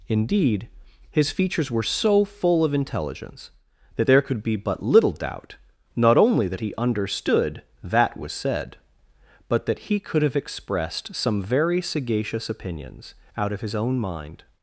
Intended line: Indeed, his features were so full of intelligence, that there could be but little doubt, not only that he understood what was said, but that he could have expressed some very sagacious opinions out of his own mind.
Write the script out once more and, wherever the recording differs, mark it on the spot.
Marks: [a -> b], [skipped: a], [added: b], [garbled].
Indeed, his features were so full of intelligence, that there could be but little doubt, not only that he understood [what -> that] was said, but that he could have expressed some very sagacious opinions out of his own mind.